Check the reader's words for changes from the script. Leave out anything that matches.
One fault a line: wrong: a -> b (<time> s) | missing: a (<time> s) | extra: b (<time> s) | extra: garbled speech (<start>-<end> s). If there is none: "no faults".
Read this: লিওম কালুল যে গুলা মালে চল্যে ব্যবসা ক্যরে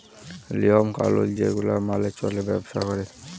no faults